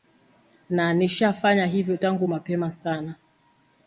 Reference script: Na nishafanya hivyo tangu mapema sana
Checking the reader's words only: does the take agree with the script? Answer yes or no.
yes